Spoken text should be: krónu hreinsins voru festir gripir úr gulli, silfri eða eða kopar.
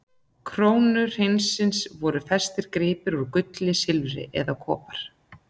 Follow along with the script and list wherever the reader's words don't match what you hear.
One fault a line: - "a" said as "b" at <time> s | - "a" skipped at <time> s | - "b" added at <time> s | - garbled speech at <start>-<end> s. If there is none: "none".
- "eða" skipped at 4.6 s